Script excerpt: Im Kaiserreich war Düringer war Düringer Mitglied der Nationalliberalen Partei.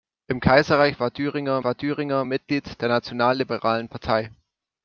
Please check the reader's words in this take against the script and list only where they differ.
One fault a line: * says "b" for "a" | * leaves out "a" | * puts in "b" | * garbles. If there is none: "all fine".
all fine